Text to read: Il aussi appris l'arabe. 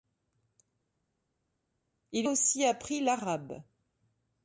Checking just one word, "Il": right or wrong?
right